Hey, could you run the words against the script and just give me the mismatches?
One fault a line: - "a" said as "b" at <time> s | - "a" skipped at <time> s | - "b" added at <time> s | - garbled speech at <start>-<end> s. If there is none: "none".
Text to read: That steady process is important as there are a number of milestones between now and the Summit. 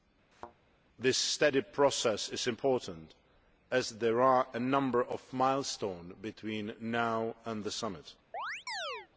- "That" said as "This" at 1.0 s